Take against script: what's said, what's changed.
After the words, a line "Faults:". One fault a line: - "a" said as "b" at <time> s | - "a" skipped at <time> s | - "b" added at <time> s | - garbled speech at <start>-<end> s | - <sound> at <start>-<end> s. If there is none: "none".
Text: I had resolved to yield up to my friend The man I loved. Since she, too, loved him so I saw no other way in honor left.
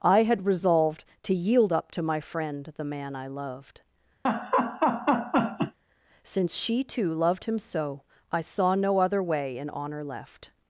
I had resolved to yield up to my friend The man I loved. Since she, too, loved him so I saw no other way in honor left.
Faults:
- laugh at 4.2-5.8 s